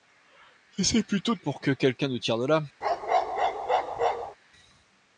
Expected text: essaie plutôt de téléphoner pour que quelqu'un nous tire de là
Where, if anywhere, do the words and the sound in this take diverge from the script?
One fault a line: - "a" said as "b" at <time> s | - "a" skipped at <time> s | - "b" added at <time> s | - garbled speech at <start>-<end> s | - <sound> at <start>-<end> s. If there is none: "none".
- "téléphoner" skipped at 1.4 s
- bark at 2.8-4.4 s